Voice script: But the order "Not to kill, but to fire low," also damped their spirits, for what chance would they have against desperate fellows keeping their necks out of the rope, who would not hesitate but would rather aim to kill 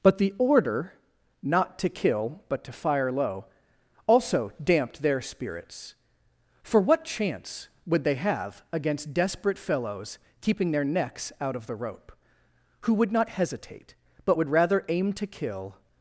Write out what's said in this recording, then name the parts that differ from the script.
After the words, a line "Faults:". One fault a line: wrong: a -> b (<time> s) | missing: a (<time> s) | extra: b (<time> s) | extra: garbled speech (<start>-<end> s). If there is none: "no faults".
But the order "Not to kill, but to fire low," also damped their spirits, for what chance would they have against desperate fellows keeping their necks out of the rope, who would not hesitate but would rather aim to kill
Faults:
no faults